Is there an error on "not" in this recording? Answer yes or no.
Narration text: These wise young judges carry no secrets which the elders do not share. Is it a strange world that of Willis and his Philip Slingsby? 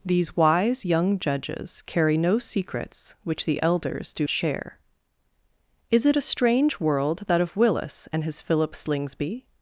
yes